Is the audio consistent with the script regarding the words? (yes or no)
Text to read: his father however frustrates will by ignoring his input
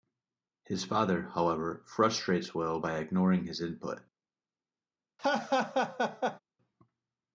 yes